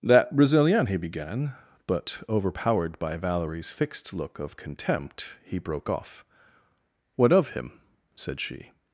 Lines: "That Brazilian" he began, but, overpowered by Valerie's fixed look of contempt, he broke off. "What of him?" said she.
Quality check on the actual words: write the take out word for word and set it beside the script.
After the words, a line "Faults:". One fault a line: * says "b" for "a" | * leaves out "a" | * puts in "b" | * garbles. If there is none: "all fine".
"That Brazilian" he began, but, overpowered by Valerie's fixed look of contempt, he broke off. "What of him?" said she.
Faults:
all fine